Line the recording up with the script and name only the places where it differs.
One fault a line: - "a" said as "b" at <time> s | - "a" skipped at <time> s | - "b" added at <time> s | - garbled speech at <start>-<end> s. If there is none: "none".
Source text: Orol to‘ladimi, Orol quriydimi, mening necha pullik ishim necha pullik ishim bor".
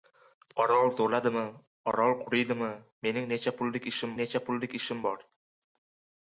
none